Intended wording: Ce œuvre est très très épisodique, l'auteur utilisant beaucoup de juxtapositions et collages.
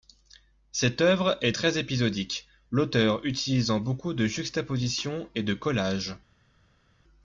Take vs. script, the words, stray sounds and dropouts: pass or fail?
fail